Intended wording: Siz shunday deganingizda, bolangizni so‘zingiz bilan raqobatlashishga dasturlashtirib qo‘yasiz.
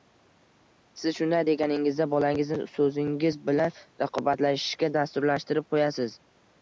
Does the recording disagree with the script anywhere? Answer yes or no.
no